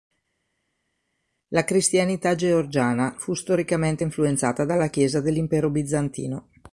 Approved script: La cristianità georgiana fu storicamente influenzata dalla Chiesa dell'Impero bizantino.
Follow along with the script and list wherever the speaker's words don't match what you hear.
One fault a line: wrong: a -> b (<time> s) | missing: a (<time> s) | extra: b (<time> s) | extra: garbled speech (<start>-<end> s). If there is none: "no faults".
no faults